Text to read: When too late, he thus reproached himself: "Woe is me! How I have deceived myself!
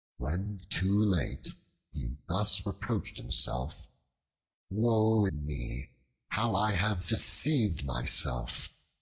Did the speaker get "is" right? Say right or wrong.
wrong